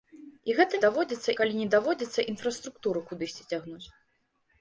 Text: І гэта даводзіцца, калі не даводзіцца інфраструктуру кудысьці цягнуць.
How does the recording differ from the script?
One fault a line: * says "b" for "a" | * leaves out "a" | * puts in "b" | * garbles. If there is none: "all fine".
all fine